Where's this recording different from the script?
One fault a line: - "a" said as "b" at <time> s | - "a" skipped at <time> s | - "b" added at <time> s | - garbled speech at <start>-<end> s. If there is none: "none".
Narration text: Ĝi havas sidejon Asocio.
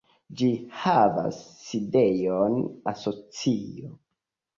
none